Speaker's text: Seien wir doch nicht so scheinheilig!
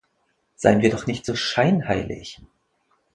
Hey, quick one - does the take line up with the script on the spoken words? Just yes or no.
yes